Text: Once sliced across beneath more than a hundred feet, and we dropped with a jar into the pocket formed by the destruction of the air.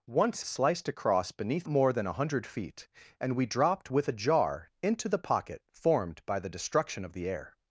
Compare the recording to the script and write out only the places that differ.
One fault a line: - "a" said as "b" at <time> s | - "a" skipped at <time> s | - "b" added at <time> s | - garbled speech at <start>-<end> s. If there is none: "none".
none